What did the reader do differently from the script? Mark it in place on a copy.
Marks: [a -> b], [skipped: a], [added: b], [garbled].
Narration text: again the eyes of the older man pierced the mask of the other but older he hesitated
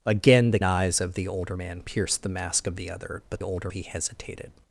again the eyes of the older man pierced the mask of the other but older he hesitated